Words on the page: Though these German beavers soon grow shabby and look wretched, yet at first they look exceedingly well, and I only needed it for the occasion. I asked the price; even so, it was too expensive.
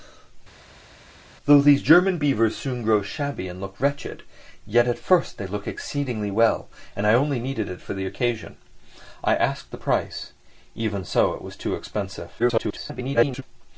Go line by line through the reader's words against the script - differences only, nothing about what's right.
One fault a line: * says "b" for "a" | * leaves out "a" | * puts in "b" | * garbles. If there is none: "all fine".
* garbles